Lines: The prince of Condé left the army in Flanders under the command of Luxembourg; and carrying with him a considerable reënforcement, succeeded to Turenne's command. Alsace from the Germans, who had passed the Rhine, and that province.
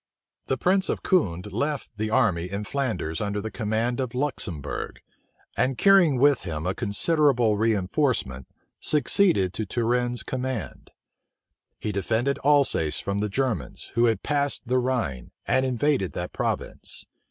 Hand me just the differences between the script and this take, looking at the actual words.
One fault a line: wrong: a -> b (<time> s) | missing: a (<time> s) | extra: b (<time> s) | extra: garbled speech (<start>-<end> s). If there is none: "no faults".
extra: He defended (11.8 s)
extra: invaded (15.6 s)